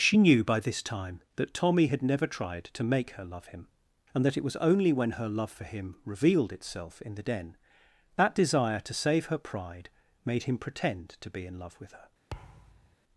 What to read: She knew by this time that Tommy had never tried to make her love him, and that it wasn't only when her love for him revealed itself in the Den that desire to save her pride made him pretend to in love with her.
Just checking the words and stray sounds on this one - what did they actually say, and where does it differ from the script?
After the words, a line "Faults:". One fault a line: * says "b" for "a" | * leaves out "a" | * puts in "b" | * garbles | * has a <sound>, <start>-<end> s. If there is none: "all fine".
She knew by this time that Tommy had never tried to make her love him, and that it was only when her love for him revealed itself in the Den that desire to save her pride made him pretend to be in love with her.
Faults:
* says "was" for "wasn't"
* puts in "be"
* has a thud, 12.3-13.0 s